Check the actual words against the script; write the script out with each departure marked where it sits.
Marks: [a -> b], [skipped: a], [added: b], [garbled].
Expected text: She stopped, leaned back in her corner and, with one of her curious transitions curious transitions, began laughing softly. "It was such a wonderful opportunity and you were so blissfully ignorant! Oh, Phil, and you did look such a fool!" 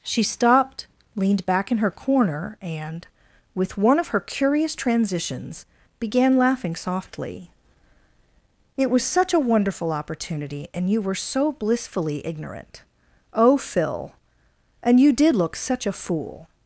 She stopped, leaned back in her corner and, with one of her curious transitions [skipped: curious transitions,] began laughing softly. "It was such a wonderful opportunity and you were so blissfully ignorant! Oh, Phil, and you did look such a fool!"